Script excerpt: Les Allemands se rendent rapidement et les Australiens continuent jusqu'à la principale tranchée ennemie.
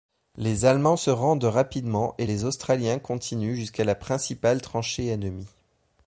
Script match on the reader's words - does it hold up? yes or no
yes